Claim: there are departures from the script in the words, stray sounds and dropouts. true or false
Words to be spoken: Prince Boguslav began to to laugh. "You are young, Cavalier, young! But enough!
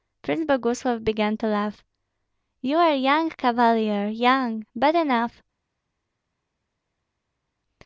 true